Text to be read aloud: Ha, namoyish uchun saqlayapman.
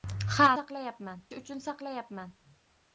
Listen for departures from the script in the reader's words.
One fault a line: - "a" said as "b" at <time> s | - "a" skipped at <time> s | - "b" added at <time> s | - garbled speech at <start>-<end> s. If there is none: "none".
- "namoyish" said as "saqlayapman" at 0.6 s